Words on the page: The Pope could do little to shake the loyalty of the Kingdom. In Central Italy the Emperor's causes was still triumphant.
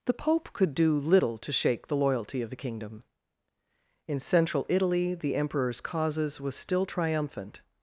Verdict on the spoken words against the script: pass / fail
pass